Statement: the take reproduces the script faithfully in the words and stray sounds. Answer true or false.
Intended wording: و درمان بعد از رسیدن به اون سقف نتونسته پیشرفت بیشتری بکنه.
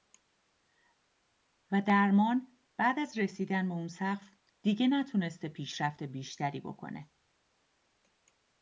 false